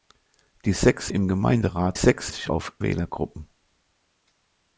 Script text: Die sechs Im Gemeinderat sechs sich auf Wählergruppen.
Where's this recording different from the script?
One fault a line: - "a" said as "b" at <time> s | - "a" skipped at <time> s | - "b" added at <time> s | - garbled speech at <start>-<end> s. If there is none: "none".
none